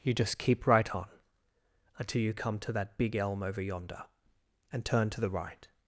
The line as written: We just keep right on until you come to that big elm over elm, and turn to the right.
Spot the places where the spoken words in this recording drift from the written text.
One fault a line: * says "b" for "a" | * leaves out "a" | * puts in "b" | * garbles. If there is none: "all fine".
* says "You" for "We"
* says "yonder" for "elm"